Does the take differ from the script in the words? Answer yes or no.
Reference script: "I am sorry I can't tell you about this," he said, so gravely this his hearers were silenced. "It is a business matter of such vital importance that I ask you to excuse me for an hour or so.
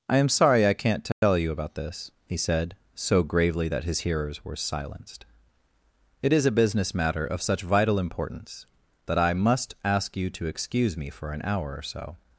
yes